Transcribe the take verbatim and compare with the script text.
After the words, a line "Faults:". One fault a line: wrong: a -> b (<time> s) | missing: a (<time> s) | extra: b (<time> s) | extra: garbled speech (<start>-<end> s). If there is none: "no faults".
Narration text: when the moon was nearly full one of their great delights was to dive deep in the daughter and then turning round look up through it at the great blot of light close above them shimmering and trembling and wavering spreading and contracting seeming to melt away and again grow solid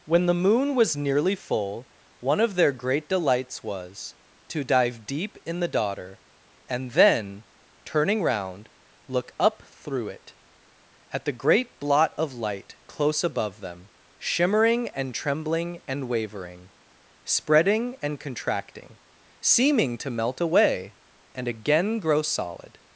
when the moon was nearly full one of their great delights was to dive deep in the daughter and then turning round look up through it at the great blot of light close above them shimmering and trembling and wavering spreading and contracting seeming to melt away and again grow solid
Faults:
no faults